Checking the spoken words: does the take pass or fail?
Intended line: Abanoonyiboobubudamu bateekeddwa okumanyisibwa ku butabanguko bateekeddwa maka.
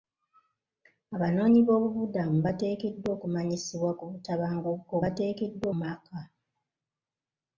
pass